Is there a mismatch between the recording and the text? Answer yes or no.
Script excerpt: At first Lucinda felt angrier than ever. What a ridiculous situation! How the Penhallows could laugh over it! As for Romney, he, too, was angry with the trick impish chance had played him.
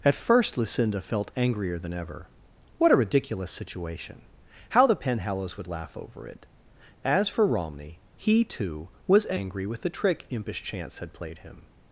yes